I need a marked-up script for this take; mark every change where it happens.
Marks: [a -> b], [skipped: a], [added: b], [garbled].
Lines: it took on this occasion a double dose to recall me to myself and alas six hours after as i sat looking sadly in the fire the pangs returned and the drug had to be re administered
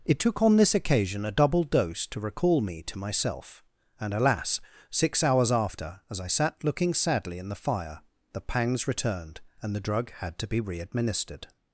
it took on this occasion a double dose to recall me to myself and alas six hours after as i sat looking sadly in the fire the pangs returned and the drug had to be re administered